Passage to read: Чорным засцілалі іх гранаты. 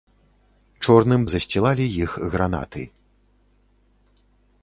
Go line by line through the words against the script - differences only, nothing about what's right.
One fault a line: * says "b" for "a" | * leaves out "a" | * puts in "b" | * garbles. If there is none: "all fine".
all fine